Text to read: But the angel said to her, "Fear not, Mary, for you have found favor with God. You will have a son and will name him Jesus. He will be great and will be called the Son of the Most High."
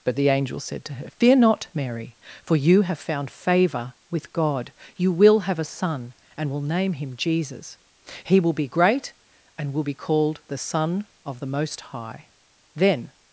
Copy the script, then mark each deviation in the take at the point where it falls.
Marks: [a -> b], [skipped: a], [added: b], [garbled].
But the angel said to her, "Fear not, Mary, for you have found favor with God. You will have a son and will name him Jesus. He will be great and will be called the Son of the Most High." [added: Then]